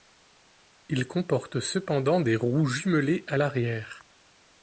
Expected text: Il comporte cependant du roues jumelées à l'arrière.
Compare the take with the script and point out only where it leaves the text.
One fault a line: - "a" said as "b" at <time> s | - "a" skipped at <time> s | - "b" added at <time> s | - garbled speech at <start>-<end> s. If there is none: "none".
- "du" said as "des" at 2.2 s